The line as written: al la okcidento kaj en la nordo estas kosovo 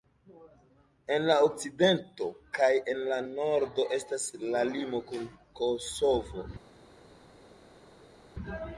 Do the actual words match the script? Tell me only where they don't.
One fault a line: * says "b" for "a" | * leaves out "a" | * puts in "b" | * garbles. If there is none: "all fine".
* says "en" for "al"
* puts in "la limo kun"